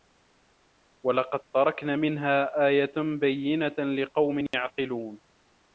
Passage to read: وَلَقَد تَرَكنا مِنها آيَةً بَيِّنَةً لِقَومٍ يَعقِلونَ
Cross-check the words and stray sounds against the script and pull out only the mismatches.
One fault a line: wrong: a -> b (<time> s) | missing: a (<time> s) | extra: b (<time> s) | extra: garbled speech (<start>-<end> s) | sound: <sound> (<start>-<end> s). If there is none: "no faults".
sound: dropout (4.5-4.5 s)